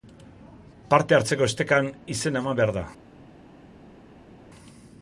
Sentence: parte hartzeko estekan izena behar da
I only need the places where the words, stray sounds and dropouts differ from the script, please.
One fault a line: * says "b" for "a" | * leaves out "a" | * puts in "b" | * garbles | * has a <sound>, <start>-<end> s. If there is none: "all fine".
* puts in "eman"